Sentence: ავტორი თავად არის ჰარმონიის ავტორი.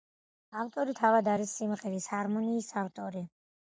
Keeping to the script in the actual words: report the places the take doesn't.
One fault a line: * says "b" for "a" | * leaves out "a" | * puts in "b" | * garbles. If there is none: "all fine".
* puts in "სიმღერის"